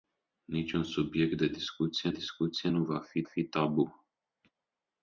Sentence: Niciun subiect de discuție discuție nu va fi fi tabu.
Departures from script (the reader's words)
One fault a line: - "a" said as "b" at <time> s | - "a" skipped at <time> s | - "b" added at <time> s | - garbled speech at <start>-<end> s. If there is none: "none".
none